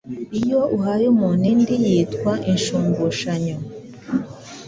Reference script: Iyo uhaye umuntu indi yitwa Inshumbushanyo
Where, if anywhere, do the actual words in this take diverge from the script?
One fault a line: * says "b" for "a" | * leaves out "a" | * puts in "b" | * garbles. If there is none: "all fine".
all fine